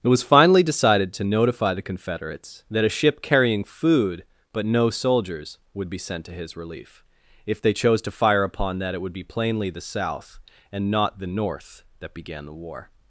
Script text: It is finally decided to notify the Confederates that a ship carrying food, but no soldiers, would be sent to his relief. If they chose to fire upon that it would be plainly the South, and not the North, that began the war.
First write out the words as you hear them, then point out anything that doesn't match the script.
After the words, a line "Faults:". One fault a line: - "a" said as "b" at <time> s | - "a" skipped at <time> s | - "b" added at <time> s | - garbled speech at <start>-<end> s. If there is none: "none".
It was finally decided to notify the Confederates that a ship carrying food, but no soldiers, would be sent to his relief. If they chose to fire upon that it would be plainly the South, and not the North, that began the war.
Faults:
- "is" said as "was" at 0.1 s